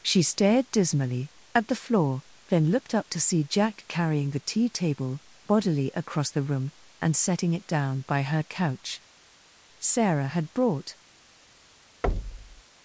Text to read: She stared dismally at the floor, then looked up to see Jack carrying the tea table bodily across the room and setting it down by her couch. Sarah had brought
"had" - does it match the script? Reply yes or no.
yes